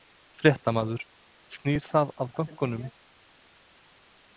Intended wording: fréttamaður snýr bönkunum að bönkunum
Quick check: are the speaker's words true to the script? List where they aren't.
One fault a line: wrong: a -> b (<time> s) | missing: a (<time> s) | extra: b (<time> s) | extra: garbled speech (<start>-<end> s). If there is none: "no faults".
wrong: bönkunum -> það (1.9 s)